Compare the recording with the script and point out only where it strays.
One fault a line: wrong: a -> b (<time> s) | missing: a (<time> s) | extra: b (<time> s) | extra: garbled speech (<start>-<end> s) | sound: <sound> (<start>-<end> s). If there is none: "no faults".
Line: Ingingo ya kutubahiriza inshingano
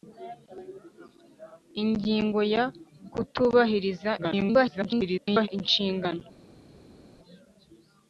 extra: garbled speech (4.2-5.5 s)